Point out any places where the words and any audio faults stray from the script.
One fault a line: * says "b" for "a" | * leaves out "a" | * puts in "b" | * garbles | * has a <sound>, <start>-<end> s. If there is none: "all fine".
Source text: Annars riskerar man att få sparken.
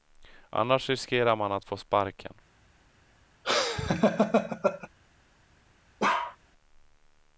* has a laugh, 3.4-4.9 s
* has a bark, 6.0-6.4 s